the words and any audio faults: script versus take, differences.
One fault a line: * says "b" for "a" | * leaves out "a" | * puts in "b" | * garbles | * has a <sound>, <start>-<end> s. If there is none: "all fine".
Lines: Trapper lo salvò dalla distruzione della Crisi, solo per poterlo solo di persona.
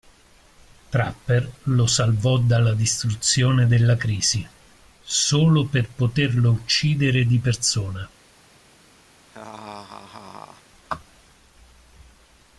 * says "uccidere" for "solo"
* has a laugh, 9.3-10.6 s